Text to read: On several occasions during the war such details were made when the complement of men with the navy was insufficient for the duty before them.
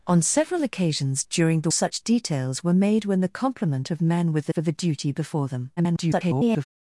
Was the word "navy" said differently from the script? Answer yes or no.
yes